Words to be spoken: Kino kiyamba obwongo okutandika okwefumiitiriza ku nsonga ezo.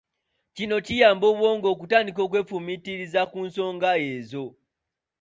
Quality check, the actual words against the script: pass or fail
pass